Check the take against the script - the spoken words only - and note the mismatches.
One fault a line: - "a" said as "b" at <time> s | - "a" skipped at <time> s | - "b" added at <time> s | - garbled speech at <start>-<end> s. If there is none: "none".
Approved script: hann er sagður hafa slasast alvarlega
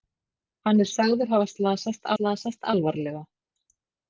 - "slasast" added at 2.1 s